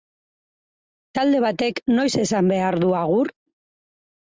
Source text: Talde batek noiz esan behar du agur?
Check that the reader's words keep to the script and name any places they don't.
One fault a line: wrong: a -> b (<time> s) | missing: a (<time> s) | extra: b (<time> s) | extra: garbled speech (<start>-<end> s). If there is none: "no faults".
no faults